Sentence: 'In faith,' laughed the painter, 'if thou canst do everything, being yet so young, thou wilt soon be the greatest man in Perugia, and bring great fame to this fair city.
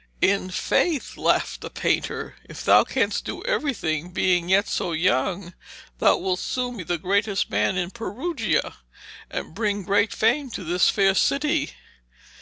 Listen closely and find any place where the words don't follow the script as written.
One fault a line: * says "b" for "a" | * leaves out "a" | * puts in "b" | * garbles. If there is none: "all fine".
all fine